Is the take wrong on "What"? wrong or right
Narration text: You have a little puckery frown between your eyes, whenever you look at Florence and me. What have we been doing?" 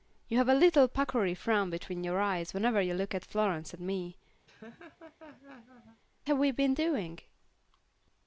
wrong